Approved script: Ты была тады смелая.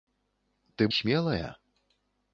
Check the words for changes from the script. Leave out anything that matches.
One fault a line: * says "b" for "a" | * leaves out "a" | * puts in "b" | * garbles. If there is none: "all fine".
* leaves out "была тады"